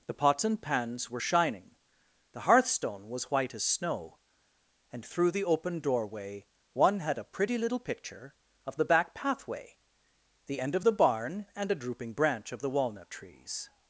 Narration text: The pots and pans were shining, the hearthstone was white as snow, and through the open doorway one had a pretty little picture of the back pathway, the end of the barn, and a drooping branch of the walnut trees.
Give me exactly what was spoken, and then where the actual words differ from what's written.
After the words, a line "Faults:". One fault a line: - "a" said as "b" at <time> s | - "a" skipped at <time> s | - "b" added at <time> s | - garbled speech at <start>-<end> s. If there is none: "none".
The pots and pans were shining, the hearthstone was white as snow, and through the open doorway one had a pretty little picture of the back pathway, the end of the barn, and a drooping branch of the walnut trees.
Faults:
none